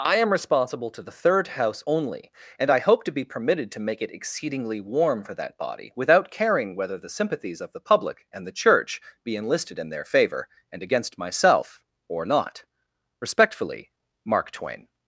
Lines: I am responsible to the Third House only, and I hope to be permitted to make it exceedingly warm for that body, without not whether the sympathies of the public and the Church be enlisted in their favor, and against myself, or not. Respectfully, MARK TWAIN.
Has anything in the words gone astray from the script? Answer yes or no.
yes